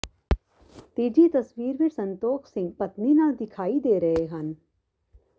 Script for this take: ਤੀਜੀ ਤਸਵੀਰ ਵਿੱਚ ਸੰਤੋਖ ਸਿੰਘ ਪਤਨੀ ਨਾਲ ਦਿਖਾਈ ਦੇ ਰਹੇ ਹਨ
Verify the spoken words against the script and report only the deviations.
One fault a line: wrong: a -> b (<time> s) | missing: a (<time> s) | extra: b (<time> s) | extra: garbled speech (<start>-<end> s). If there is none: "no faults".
no faults